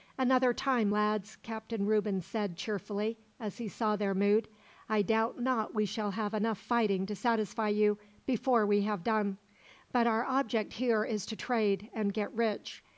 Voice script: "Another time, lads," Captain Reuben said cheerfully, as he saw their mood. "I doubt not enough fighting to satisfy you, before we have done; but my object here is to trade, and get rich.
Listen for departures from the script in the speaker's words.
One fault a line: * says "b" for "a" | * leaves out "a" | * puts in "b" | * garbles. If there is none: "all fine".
* puts in "we shall have"
* says "our" for "my"